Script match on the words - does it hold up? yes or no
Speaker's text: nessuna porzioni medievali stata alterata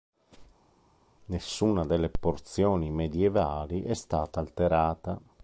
no